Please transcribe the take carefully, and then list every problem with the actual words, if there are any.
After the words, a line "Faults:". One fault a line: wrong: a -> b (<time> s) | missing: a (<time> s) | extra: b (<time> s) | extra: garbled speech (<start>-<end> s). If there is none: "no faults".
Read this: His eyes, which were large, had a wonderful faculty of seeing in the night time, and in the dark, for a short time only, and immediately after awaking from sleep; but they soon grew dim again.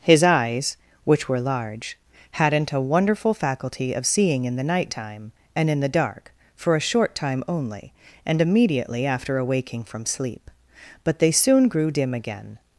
His eyes, which were large, hadn't a wonderful faculty of seeing in the night time, and in the dark, for a short time only, and immediately after awaking from sleep; but they soon grew dim again.
Faults:
wrong: had -> hadn't (2.3 s)